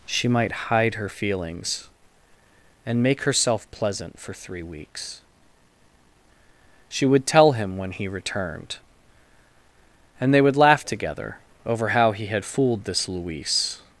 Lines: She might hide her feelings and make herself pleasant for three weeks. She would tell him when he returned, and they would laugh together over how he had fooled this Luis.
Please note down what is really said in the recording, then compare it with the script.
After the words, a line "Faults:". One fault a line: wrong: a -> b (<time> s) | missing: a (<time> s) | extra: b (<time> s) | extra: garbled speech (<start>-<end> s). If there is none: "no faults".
She might hide her feelings and make herself pleasant for three weeks. She would tell him when he returned, and they would laugh together over how he had fooled this Luis.
Faults:
no faults